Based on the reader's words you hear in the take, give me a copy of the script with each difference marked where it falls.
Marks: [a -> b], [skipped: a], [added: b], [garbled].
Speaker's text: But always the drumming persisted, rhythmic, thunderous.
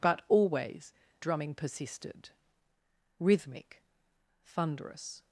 But always [skipped: the] drumming persisted, rhythmic, thunderous.